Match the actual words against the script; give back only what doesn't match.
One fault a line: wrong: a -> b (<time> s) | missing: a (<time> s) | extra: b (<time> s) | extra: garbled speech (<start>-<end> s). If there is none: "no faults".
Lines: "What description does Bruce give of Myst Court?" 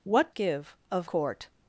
missing: description does Bruce (0.3 s)
missing: Myst (1.1 s)